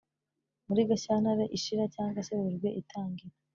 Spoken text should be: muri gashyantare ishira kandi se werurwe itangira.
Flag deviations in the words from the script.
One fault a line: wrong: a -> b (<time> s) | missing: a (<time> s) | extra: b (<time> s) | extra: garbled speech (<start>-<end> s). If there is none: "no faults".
wrong: kandi -> cyangwa (1.9 s)